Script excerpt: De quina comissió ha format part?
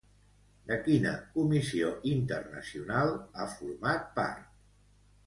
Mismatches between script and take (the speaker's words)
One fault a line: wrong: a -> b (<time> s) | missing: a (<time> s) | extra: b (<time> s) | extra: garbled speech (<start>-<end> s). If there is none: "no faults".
extra: internacional (2.1 s)